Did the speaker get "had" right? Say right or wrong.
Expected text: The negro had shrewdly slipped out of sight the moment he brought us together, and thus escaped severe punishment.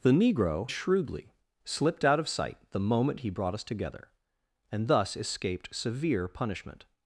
wrong